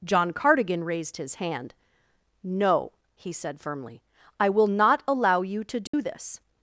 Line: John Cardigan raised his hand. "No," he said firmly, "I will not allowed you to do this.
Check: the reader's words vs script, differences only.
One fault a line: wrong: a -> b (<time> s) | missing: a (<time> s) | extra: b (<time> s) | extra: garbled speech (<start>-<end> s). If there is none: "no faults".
wrong: allowed -> allow (5.1 s)